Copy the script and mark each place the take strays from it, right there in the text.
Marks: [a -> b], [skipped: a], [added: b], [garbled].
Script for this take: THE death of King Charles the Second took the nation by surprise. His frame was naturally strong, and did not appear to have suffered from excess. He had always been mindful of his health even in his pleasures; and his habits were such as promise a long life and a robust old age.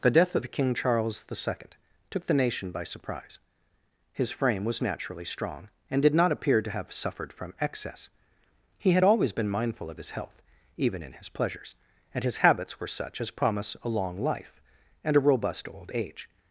THE death of King Charles the Second took the nation by surprise. His frame was naturally strong, and did not appear to have suffered from excess. He had always been mindful of his health even in his pleasures; and his habits were such as promise a long life and a robust old age.